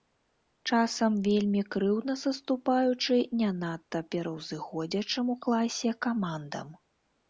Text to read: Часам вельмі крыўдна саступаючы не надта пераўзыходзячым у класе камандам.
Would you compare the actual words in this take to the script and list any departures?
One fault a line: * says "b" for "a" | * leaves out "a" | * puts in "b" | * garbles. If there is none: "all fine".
all fine